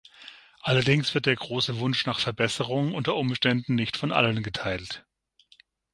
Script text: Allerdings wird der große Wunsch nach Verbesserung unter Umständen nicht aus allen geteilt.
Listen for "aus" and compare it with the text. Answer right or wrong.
wrong